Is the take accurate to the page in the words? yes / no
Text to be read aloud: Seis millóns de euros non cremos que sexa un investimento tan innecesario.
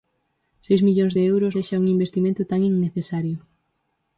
no